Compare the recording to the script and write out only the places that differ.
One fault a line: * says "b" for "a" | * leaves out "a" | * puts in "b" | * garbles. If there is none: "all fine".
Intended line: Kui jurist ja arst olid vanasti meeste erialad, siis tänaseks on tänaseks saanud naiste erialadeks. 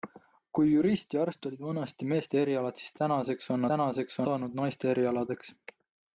all fine